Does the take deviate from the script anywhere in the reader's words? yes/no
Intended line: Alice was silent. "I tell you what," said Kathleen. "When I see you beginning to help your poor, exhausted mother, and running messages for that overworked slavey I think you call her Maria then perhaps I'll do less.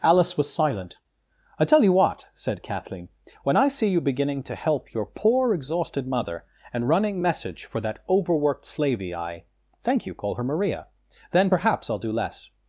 yes